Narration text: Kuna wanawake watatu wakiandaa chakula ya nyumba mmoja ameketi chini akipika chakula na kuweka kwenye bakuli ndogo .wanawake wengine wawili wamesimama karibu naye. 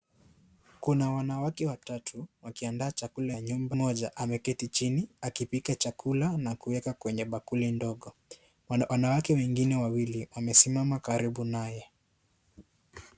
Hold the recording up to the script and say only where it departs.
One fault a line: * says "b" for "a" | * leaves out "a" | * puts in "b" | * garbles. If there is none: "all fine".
all fine